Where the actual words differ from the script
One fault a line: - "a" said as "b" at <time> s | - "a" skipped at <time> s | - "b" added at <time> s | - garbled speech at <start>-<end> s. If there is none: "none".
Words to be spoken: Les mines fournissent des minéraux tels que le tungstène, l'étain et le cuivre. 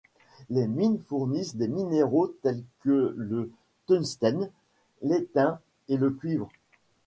none